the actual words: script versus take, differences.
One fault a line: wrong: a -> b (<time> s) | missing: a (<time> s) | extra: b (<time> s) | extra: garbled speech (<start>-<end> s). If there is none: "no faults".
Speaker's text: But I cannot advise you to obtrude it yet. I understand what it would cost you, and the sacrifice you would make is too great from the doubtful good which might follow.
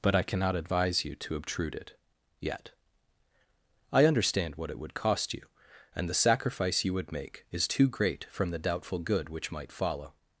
no faults